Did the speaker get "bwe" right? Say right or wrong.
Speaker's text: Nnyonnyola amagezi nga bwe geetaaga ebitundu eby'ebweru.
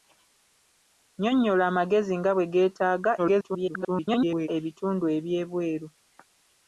right